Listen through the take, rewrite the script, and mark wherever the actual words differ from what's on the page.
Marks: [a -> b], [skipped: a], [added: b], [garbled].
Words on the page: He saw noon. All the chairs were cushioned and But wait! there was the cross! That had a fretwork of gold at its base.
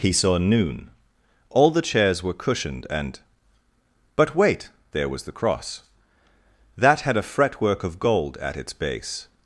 He saw noon. All the chairs were cushioned and But wait! there was the cross! That had a fretwork of gold at its base.